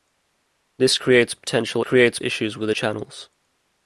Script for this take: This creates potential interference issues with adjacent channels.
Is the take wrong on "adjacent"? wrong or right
wrong